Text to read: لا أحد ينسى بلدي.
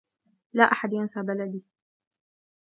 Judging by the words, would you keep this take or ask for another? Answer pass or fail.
pass